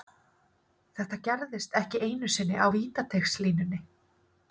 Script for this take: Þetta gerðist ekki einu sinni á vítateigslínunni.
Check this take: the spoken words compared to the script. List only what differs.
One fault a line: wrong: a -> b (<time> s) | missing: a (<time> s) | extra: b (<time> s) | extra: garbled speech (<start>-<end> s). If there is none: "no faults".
no faults